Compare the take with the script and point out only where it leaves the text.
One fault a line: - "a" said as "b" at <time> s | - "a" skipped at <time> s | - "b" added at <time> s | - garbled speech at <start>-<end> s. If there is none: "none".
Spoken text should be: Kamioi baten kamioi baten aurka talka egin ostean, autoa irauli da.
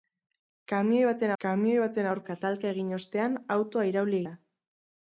none